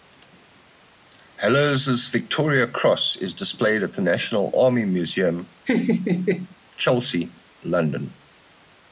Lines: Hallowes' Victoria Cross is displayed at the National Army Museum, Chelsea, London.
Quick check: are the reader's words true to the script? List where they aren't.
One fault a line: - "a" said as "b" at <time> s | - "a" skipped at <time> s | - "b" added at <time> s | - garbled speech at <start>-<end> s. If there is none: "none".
none